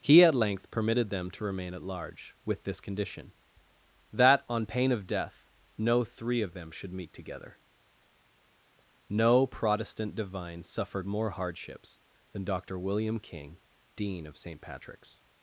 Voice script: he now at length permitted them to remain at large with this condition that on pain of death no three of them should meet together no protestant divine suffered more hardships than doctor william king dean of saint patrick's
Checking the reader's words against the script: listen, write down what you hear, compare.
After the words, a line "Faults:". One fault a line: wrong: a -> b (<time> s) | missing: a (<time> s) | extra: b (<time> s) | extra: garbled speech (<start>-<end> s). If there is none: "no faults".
he at length permitted them to remain at large with this condition that on pain of death no three of them should meet together no protestant divine suffered more hardships than doctor william king dean of saint patrick's
Faults:
missing: now (0.2 s)